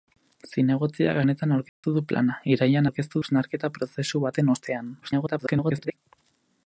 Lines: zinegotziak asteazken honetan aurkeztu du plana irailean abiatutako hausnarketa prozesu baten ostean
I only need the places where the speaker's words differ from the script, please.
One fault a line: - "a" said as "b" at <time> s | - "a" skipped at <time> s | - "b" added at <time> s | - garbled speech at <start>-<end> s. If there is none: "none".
- "asteazken" skipped at 1.2 s
- "abiatutako" said as "aurkeztu" at 2.9 s
- garbled speech at 5.0-6.0 s